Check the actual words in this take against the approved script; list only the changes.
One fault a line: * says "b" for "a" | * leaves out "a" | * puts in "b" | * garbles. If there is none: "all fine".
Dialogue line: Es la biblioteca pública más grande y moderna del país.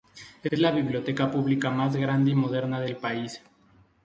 * puts in "es"